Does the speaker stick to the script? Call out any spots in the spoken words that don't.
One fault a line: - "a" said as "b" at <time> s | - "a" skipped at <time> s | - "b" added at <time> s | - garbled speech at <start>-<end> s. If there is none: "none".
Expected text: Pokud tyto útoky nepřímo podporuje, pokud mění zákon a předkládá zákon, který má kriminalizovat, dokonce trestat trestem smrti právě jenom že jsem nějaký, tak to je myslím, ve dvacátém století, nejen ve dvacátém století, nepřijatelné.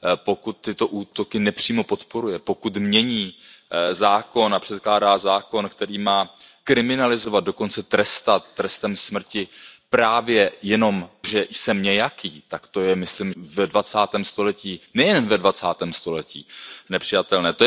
none